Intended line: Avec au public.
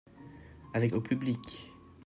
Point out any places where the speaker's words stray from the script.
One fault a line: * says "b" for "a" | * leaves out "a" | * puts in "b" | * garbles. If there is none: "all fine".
all fine